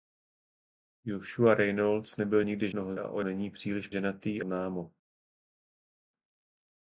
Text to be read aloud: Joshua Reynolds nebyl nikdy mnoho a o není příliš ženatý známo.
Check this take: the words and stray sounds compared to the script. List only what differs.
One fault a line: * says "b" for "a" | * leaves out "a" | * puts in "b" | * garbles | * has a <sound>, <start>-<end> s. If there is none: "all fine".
all fine